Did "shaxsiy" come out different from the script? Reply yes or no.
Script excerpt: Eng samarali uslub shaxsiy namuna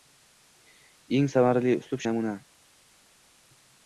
yes